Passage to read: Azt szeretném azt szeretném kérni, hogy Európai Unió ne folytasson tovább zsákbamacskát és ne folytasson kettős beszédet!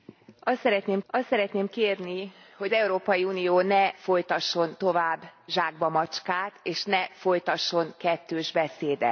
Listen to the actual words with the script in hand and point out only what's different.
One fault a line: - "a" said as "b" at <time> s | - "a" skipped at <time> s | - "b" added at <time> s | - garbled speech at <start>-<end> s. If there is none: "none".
none